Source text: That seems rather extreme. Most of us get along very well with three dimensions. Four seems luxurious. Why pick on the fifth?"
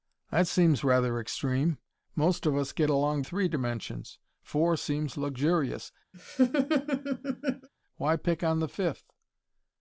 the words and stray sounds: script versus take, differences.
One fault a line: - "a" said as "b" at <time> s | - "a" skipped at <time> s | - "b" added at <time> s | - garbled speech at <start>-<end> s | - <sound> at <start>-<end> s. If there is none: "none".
- "very well with" skipped at 3.2 s
- laugh at 6.1-7.7 s